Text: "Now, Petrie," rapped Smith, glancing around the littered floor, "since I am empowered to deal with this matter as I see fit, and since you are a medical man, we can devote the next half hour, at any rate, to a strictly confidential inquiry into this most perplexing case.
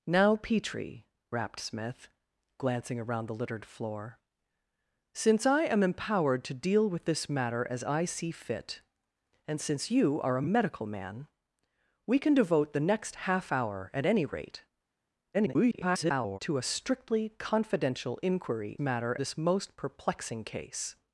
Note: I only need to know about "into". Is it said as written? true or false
false